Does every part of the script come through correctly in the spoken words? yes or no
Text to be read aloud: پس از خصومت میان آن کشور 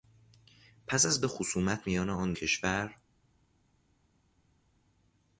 yes